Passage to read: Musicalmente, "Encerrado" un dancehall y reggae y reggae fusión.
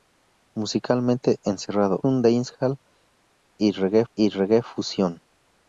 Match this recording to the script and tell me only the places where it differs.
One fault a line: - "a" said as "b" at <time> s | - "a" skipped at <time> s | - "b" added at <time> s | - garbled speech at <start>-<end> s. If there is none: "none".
none